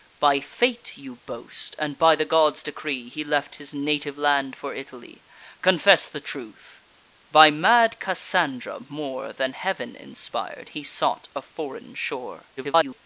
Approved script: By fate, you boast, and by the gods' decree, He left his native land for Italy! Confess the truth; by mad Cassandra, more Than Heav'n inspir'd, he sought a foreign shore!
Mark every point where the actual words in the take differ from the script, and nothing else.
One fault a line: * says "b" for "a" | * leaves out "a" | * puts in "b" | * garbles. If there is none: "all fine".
* garbles